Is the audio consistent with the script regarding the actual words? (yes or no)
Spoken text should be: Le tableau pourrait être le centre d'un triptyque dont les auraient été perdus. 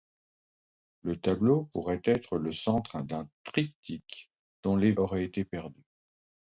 yes